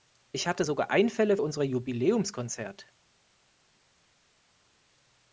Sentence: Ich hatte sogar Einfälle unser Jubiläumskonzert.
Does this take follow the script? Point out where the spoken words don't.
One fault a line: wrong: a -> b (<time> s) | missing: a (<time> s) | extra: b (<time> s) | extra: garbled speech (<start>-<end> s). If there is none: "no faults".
no faults